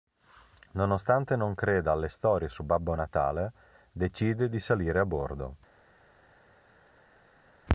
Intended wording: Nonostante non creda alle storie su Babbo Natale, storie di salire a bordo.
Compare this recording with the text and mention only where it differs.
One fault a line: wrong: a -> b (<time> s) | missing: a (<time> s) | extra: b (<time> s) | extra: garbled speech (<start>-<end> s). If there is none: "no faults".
wrong: storie -> decide (3.9 s)